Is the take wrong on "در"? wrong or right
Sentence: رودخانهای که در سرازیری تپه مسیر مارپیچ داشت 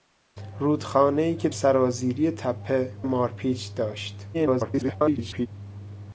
wrong